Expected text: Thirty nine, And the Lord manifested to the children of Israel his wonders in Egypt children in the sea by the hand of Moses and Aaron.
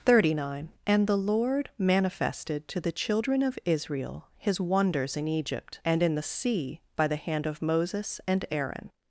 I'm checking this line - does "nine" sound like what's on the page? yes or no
yes